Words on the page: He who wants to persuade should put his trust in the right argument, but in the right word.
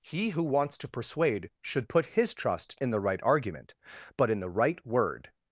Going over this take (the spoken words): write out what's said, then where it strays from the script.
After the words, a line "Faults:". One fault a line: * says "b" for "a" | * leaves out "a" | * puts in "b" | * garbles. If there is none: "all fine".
He who wants to persuade should put his trust in the right argument, but in the right word.
Faults:
all fine